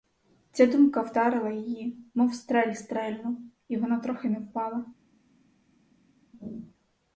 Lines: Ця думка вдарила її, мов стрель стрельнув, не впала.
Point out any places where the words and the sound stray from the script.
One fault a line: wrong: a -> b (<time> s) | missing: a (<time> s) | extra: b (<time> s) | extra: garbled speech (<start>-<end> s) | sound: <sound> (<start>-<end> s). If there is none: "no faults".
extra: і вона трохи (3.7 s)